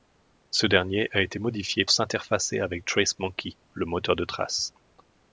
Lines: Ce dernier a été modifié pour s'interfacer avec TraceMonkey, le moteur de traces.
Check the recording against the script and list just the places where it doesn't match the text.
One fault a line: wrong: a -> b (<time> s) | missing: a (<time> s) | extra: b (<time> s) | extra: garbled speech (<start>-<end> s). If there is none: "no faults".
missing: pour (1.9 s)